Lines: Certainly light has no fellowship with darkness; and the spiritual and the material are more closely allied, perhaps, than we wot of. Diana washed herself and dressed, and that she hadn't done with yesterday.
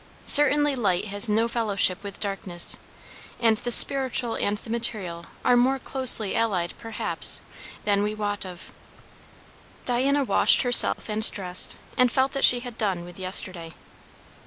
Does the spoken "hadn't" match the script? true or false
false